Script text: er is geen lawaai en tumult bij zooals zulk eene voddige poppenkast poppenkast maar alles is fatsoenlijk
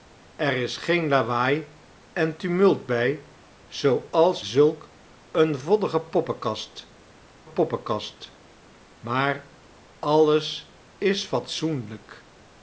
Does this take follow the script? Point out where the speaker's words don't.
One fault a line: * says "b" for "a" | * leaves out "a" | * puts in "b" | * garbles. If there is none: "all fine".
all fine